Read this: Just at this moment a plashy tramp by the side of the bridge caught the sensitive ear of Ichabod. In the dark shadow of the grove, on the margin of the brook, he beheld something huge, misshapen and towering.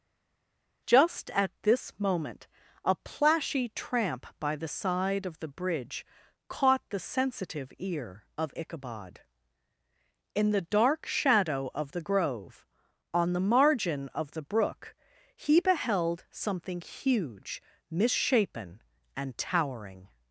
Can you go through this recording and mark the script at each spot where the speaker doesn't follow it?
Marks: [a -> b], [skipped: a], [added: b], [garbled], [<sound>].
Just at this moment a plashy tramp by the side of the bridge caught the sensitive ear of Ichabod. In the dark shadow of the grove, on the margin of the brook, he beheld something huge, misshapen and towering.